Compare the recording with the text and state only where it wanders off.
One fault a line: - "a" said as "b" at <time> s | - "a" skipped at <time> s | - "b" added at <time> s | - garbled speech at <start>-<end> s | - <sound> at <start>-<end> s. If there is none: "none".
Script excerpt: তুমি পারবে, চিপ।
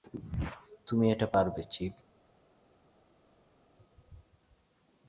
- "এটা" added at 1.1 s